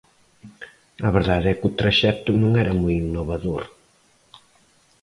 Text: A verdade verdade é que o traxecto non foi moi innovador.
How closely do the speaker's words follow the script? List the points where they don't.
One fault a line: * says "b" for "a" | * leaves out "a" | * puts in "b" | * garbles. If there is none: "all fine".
* leaves out "verdade"
* says "era" for "foi"